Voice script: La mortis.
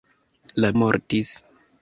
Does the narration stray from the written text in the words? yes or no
no